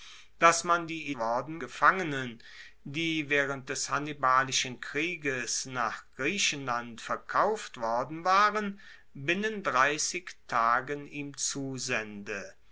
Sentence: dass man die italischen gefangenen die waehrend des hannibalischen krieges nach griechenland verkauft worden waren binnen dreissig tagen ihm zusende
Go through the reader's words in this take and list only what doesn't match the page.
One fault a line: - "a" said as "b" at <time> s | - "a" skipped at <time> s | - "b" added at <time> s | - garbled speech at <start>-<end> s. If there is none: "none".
- "italischen" said as "worden" at 1.2 s